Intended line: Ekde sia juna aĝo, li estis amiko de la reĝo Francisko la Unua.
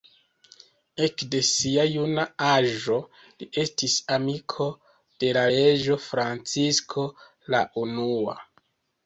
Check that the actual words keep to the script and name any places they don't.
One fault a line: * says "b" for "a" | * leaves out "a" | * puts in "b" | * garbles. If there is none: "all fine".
all fine